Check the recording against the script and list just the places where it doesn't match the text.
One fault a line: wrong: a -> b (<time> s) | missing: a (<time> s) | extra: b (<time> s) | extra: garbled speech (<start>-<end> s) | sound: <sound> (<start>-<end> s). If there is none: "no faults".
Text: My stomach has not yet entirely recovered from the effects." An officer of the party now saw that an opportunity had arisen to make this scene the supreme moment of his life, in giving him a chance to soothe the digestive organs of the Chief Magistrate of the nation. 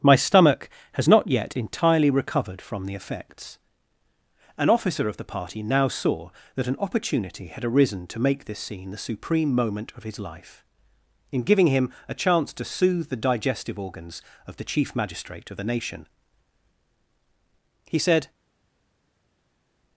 extra: He said (17.9 s)